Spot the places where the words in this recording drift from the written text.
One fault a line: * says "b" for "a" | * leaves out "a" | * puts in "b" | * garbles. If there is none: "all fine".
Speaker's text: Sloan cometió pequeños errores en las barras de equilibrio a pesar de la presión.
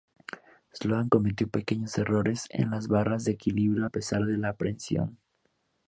all fine